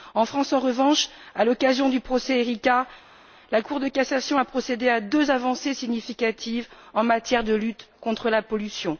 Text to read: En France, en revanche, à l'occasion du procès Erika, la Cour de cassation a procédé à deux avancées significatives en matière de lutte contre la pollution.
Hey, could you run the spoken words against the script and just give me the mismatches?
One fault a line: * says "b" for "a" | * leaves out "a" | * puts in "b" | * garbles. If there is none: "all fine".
all fine